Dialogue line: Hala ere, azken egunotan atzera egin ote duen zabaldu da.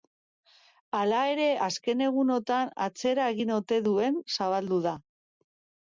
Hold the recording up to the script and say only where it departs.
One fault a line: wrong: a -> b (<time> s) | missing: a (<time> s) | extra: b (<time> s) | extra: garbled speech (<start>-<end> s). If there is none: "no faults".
no faults